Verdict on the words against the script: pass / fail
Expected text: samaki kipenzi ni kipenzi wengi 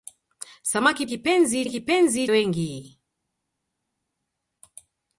pass